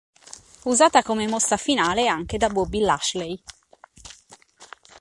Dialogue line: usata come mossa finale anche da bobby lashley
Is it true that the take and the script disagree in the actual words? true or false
false